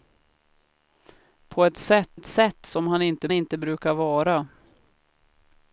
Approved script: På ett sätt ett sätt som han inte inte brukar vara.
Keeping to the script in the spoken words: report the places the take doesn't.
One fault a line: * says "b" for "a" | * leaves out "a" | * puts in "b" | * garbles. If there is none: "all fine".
all fine